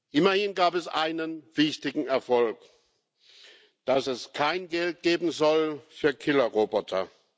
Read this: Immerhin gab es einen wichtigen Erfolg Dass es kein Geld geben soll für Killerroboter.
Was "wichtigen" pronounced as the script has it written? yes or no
yes